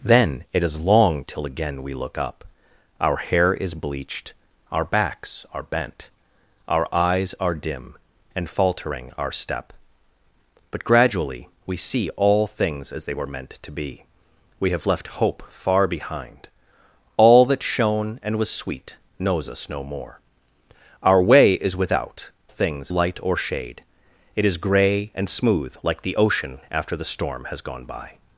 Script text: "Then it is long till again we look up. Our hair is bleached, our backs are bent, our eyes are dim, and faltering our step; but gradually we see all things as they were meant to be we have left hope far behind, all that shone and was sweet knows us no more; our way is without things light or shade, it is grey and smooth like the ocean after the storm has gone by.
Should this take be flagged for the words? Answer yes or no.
no